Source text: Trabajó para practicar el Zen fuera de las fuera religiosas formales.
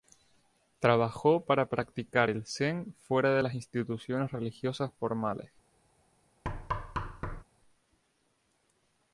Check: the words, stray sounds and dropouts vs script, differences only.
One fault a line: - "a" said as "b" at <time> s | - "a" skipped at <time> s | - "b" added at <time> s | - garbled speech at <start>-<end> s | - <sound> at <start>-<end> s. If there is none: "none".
- "fuera" said as "instituciones" at 3.5 s
- thud at 6.4-7.4 s